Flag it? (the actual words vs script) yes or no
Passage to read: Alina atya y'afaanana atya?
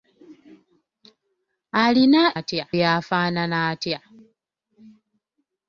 no